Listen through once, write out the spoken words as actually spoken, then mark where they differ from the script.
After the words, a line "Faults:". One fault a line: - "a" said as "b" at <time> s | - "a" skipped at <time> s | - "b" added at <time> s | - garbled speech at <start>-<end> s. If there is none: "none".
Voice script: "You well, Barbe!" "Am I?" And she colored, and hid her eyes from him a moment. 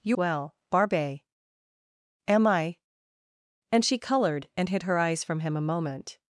"You well, Barbe!" "Am I?" And she colored, and hid her eyes from him a moment.
Faults:
none